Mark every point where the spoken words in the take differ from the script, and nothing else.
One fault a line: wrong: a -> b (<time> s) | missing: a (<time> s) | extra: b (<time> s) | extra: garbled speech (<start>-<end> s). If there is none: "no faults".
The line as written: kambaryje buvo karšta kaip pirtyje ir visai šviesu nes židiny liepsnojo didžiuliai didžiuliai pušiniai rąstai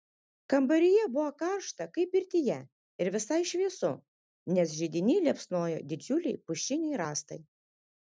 missing: didžiuliai (6.4 s)